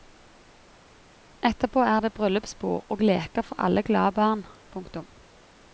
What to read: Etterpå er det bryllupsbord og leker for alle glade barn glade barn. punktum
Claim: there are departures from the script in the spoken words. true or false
true